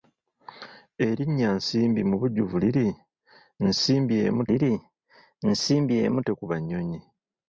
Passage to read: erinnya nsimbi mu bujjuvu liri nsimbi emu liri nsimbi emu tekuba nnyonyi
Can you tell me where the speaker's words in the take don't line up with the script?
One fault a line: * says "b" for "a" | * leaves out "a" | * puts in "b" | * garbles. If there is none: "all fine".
all fine